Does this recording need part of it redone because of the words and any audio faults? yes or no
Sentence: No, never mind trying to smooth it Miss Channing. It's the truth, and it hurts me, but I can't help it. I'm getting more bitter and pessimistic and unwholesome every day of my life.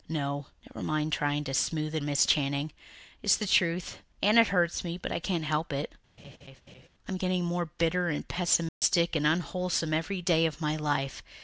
yes